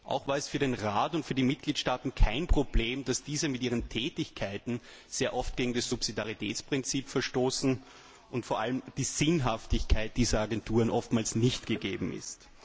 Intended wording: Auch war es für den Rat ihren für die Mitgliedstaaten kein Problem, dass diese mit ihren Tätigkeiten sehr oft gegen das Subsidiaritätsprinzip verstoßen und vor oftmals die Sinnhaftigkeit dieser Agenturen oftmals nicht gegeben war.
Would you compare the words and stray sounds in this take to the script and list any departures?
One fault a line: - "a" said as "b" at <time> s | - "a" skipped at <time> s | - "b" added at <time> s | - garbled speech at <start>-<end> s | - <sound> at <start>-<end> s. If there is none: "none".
- "ihren" said as "und" at 1.1 s
- "oftmals" said as "allem" at 8.6 s
- "war" said as "ist" at 12.1 s